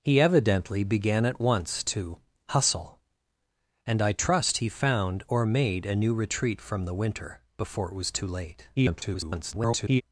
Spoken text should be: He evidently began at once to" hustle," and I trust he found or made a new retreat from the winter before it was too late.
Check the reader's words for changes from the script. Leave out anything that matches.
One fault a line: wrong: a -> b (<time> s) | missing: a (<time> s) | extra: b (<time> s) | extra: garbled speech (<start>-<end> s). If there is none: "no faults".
extra: garbled speech (8.8-10.0 s)